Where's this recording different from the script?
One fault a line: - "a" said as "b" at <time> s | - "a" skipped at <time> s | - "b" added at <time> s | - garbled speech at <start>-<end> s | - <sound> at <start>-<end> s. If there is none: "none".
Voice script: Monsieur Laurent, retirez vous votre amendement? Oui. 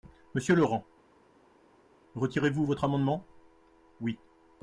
none